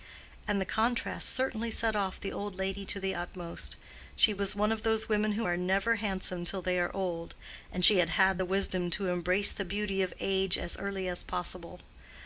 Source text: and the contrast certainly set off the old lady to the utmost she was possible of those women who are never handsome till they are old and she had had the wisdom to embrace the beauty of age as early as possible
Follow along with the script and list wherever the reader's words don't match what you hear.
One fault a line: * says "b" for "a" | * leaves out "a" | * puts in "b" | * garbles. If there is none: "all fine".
* says "one" for "possible"